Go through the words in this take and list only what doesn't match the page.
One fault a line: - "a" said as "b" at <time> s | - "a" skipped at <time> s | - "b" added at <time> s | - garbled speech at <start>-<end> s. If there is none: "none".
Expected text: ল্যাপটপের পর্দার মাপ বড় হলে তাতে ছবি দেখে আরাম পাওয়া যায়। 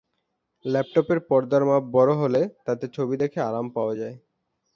none